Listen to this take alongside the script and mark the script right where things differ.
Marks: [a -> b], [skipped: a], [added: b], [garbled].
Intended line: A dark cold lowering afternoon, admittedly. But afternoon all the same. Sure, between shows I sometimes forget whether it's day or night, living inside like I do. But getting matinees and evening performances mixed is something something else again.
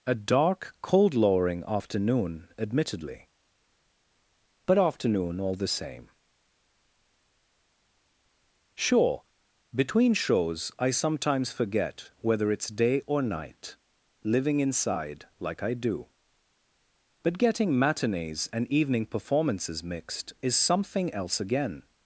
A dark cold lowering afternoon, admittedly. But afternoon all the same. Sure, between shows I sometimes forget whether it's day or night, living inside like I do. But getting matinees and evening performances mixed is something [skipped: something] else again.